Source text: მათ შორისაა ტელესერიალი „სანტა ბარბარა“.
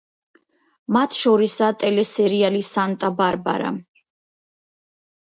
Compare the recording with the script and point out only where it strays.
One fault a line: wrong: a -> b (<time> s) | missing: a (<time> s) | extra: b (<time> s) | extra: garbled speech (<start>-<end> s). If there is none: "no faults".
no faults